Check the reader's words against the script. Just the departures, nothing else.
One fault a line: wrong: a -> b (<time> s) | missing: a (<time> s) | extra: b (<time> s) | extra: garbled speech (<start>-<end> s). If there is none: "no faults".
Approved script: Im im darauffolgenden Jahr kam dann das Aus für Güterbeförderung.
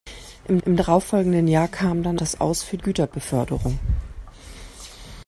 no faults